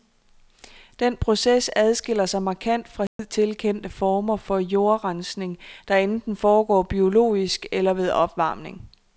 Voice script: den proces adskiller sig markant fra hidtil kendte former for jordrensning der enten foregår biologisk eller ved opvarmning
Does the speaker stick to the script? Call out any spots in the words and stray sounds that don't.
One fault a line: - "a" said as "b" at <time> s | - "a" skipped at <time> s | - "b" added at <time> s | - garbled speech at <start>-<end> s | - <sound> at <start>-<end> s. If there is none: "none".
- dropout at 3.1-3.2 s